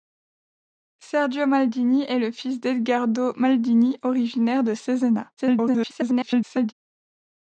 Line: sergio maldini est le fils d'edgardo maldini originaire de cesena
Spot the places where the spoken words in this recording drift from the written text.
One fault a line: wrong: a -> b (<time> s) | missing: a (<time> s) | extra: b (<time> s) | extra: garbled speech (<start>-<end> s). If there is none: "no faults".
extra: garbled speech (5.4-6.7 s)